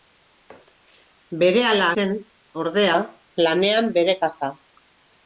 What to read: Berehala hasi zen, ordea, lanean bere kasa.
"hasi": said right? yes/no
no